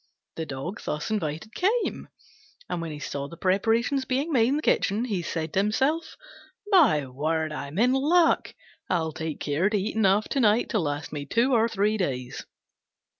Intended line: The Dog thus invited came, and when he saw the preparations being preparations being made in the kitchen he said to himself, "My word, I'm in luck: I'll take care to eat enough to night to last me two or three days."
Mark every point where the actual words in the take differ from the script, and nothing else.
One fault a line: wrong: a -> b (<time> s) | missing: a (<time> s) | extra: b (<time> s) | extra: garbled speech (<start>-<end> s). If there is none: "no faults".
missing: preparations being (4.3 s)